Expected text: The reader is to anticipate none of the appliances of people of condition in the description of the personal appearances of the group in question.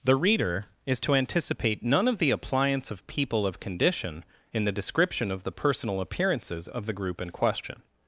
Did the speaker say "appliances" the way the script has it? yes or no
no